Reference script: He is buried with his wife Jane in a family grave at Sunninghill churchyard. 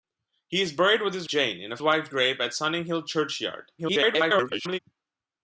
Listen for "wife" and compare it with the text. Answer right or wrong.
wrong